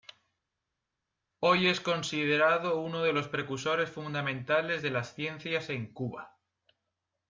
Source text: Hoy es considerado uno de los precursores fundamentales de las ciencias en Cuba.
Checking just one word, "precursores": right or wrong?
right